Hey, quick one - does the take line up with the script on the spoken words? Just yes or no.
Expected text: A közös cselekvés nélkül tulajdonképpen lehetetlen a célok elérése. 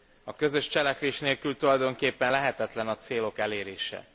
yes